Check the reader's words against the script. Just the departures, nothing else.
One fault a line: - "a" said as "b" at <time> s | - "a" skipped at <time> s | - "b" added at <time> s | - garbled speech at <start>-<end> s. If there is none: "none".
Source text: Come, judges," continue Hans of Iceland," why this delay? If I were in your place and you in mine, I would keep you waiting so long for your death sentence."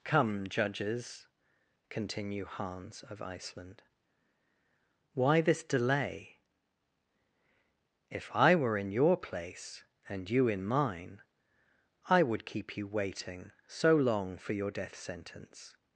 none